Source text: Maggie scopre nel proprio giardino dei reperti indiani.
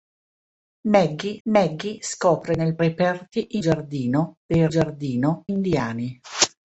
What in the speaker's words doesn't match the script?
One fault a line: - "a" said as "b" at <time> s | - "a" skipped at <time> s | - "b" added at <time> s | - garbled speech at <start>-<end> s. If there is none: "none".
- "maggie" added at 1.5 s
- "proprio" said as "reperti" at 2.8 s
- "reperti" said as "giardino" at 4.7 s